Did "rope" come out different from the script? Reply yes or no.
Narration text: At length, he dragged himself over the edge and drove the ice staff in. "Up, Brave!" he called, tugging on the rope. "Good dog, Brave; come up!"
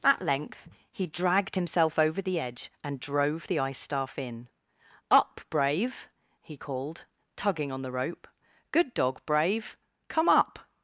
no